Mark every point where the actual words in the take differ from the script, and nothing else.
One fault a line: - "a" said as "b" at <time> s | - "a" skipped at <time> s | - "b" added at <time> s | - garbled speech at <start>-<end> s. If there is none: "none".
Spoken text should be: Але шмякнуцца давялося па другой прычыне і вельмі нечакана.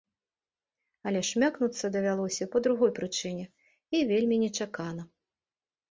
none